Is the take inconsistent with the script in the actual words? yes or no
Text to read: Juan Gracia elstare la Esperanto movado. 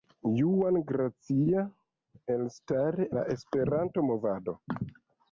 no